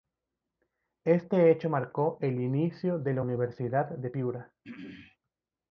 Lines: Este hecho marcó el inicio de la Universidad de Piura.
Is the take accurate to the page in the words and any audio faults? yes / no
no